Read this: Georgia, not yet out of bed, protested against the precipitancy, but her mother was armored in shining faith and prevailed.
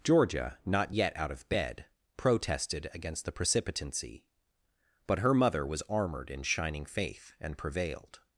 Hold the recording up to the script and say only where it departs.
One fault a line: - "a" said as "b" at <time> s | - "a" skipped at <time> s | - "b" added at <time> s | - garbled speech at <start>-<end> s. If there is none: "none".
none